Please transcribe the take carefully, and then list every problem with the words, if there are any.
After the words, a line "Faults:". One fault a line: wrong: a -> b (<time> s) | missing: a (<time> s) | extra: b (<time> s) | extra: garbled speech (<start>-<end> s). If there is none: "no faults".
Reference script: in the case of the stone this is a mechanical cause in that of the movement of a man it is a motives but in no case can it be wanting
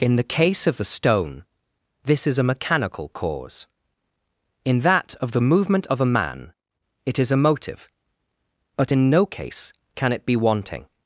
in the case of the stone this is a mechanical cause in that of the movement of a man it is a motive but in no case can it be wanting
Faults:
wrong: motives -> motive (7.4 s)